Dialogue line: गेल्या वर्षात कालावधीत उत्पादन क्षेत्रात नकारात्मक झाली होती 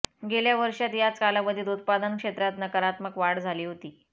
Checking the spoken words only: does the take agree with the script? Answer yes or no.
no